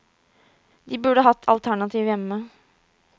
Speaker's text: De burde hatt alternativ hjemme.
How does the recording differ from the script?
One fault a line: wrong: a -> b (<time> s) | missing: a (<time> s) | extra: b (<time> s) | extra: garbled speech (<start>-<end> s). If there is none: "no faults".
no faults